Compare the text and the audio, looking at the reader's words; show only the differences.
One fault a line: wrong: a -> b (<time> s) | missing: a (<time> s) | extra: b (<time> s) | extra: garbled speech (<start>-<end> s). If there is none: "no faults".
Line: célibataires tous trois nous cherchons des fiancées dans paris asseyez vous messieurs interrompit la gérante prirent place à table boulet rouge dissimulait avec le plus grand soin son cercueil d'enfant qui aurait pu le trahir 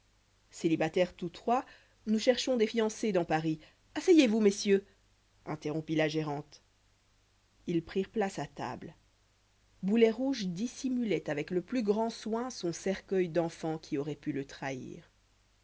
extra: ils (7.7 s)